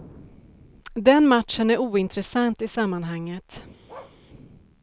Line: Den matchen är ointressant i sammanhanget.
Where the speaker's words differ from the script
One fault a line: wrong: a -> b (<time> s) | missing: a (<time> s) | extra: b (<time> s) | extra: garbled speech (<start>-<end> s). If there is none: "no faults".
no faults